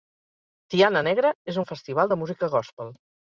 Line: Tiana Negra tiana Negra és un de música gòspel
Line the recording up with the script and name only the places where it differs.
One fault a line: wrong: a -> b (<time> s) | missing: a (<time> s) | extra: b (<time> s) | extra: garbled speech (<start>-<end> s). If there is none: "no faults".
missing: tiana Negra (1.3 s)
extra: festival (1.7 s)